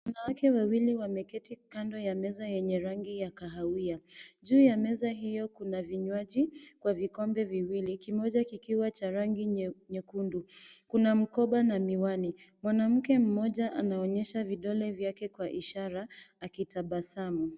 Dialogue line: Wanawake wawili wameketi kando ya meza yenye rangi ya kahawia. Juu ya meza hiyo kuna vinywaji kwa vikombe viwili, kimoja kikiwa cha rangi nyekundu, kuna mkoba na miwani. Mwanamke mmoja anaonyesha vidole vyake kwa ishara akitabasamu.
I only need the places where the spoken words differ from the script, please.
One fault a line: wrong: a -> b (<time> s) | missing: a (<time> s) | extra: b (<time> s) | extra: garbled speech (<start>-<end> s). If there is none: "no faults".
no faults